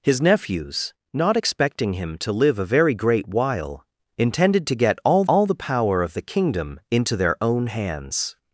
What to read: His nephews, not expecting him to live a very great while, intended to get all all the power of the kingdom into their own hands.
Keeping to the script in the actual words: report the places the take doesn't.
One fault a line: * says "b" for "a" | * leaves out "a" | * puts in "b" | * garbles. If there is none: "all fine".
all fine